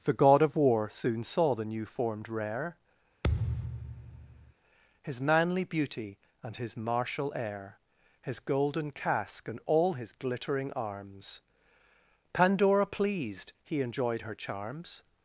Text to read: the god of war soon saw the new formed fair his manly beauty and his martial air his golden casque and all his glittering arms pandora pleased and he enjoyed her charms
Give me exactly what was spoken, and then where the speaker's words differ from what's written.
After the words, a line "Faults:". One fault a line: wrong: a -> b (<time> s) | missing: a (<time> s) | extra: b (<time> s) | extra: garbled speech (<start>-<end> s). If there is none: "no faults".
the god of war soon saw the new formed rare his manly beauty and his martial air his golden casque and all his glittering arms pandora pleased he enjoyed her charms
Faults:
wrong: fair -> rare (2.3 s)
missing: and (13.5 s)